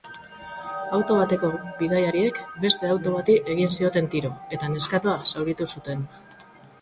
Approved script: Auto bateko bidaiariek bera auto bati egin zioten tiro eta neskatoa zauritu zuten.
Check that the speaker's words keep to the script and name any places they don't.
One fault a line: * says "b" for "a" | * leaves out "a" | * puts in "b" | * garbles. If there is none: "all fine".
* says "beste" for "bera"